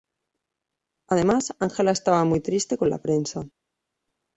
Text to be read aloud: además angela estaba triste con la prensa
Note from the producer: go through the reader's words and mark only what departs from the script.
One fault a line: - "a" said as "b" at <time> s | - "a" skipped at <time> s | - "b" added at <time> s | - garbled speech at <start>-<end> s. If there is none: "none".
- "muy" added at 2.2 s